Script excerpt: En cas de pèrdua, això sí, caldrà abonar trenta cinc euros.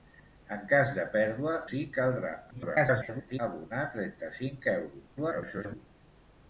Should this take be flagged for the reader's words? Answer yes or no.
yes